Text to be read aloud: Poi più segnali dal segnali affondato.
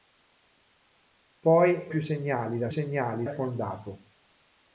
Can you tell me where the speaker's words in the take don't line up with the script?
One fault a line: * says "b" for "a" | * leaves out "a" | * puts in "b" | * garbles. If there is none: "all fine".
all fine